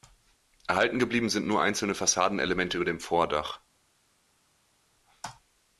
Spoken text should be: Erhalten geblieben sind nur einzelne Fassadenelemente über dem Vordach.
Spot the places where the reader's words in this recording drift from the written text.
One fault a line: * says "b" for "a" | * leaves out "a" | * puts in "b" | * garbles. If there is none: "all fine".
all fine